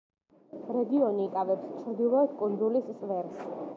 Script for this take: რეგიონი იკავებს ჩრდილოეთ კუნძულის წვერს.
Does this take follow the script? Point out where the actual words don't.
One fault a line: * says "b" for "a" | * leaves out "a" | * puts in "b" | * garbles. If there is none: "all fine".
all fine